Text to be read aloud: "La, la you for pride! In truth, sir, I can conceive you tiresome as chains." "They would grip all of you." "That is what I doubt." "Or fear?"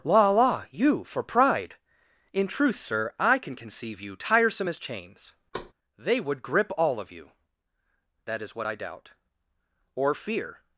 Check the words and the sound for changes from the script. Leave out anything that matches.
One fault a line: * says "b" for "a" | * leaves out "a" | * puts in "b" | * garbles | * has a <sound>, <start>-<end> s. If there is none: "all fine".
* has a thud, 5.5-5.7 s